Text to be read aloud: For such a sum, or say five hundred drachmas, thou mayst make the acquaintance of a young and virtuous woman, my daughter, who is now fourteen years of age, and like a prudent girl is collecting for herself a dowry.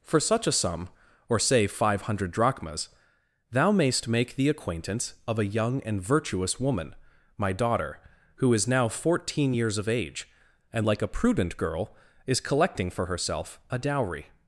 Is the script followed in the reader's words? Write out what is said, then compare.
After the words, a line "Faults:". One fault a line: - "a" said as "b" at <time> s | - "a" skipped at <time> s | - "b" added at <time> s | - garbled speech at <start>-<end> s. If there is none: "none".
For such a sum, or say five hundred drachmas, thou mayst make the acquaintance of a young and virtuous woman, my daughter, who is now fourteen years of age, and like a prudent girl is collecting for herself a dowry.
Faults:
none